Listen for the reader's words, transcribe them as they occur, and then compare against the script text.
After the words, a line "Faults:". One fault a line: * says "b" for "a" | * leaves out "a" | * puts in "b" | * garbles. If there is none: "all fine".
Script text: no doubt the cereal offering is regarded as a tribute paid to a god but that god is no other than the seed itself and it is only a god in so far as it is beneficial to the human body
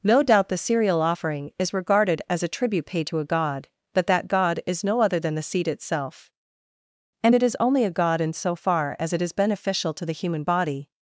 no doubt the cereal offering is regarded as a tribute paid to a god but that god is no other than the seed itself and it is only a god in so far as it is beneficial to the human body
Faults:
all fine